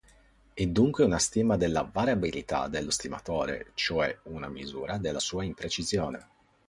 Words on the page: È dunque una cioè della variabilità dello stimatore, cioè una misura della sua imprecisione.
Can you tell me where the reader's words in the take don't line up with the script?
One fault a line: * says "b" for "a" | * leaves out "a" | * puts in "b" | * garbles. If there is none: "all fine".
* says "stima" for "cioè"